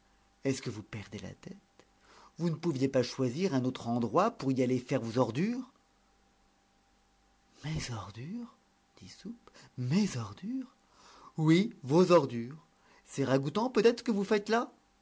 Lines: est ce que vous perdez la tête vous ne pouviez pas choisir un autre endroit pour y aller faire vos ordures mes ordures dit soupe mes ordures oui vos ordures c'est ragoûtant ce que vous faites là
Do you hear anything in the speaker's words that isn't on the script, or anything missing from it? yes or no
yes